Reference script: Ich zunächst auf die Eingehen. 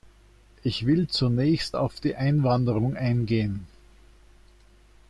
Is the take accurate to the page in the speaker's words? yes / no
no